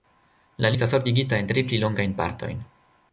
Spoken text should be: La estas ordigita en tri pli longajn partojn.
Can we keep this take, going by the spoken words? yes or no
yes